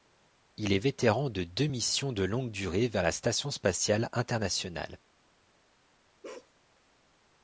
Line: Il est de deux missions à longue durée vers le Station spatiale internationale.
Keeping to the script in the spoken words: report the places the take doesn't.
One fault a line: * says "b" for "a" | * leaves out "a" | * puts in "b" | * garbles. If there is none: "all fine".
* puts in "vétéran"
* says "de" for "à"
* says "la" for "le"